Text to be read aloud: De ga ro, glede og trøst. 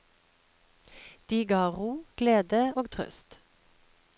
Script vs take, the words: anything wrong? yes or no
no